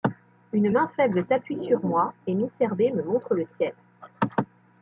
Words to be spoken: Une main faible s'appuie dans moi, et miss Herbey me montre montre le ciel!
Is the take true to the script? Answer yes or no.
no